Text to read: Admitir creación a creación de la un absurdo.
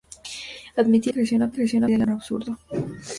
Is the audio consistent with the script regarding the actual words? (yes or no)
yes